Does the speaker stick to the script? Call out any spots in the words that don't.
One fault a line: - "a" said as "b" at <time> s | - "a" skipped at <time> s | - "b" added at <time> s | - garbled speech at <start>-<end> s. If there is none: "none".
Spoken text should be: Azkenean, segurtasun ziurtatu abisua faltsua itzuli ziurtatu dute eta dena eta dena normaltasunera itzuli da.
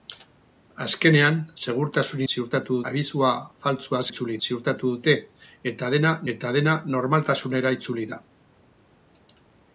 none